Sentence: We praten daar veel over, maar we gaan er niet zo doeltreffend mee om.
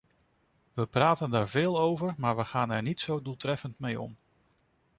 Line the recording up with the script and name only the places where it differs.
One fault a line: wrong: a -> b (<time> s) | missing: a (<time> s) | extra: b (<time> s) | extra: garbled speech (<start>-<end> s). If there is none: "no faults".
no faults